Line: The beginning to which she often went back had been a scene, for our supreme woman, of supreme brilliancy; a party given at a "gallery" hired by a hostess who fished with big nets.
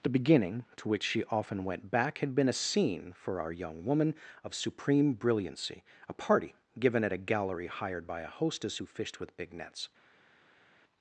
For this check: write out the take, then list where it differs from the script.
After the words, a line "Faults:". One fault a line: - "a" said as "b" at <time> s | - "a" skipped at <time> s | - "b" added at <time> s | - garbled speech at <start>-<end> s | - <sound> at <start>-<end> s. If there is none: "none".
The beginning to which she often went back had been a scene, for our young woman, of supreme brilliancy; a party given at a "gallery" hired by a hostess who fished with big nets.
Faults:
- "supreme" said as "young" at 3.5 s